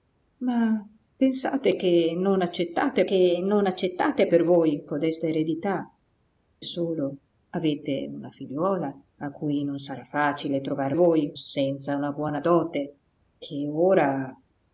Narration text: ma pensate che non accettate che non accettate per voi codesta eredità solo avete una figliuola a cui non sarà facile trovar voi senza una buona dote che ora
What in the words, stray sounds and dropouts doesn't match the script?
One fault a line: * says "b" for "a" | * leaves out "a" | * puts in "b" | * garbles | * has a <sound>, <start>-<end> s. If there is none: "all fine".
all fine